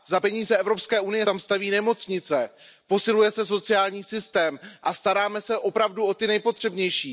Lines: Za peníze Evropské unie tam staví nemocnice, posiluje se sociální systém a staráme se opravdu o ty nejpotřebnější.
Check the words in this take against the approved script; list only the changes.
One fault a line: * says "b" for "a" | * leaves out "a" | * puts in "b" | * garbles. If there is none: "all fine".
all fine